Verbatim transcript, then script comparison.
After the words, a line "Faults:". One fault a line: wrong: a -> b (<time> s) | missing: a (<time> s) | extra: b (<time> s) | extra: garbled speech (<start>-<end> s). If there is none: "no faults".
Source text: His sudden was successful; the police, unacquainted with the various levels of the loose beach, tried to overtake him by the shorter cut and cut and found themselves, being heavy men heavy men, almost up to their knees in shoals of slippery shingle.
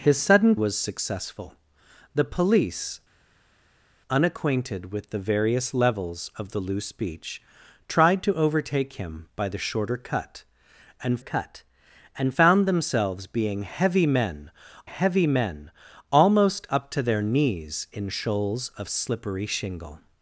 His sudden was successful; the police, unacquainted with the various levels of the loose beach, tried to overtake him by the shorter cut and cut and found themselves, being heavy men heavy men, almost up to their knees in shoals of slippery shingle.
Faults:
no faults